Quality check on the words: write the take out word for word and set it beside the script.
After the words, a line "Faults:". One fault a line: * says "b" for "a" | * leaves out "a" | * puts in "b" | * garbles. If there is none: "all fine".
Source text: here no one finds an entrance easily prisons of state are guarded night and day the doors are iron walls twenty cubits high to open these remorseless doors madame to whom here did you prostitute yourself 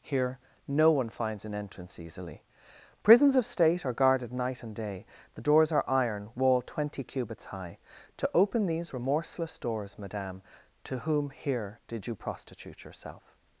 here no one finds an entrance easily prisons of state are guarded night and day the doors are iron wall twenty cubits high to open these remorseless doors madame to whom here did you prostitute yourself
Faults:
* says "wall" for "walls"